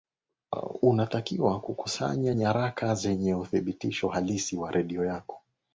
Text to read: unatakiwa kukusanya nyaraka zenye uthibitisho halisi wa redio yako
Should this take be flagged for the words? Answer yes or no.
no